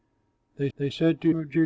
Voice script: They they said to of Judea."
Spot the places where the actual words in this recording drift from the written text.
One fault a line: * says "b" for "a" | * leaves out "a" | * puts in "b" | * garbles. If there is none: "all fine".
all fine